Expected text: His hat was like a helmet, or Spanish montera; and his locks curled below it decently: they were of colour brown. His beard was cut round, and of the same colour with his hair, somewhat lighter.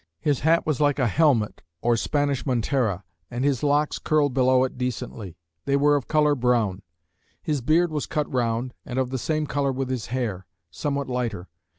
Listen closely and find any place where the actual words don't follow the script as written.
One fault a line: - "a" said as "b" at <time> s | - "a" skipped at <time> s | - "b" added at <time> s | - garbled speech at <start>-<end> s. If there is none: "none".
none